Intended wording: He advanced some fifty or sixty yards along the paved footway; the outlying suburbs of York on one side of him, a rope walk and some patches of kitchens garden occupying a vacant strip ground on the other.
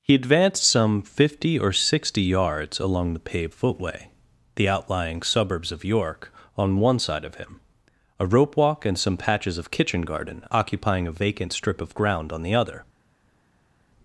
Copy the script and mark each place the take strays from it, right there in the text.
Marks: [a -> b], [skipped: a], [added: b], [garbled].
He advanced some fifty or sixty yards along the paved footway; the outlying suburbs of York on one side of him, a rope walk and some patches of [kitchens -> kitchen] garden occupying a vacant strip [added: of] ground on the other.